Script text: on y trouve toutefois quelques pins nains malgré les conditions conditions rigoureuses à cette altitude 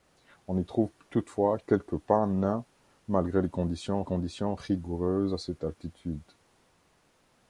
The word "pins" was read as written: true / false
true